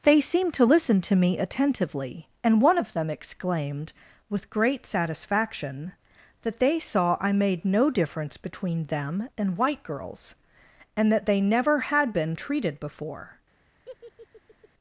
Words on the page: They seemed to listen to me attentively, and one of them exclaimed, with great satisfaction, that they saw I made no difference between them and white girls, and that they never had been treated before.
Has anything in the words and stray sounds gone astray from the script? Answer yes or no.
yes